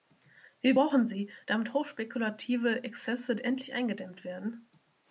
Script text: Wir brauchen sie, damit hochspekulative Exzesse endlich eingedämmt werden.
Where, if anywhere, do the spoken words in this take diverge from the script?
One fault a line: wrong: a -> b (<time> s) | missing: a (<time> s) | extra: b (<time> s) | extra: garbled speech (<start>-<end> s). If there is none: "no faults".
no faults